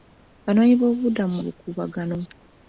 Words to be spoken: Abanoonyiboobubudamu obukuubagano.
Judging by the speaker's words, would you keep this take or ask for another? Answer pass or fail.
pass